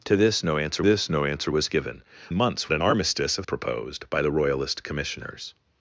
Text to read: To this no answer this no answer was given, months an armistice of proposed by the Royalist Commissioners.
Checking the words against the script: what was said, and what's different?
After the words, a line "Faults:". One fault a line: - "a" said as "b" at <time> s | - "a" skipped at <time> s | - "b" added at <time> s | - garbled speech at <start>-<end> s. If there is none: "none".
To this no answer this no answer was given, months an armistice of proposed by the Royalist Commissioners.
Faults:
none